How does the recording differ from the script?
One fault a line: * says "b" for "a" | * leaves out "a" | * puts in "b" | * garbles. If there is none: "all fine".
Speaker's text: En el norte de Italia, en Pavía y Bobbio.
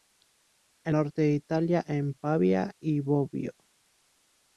* leaves out "el"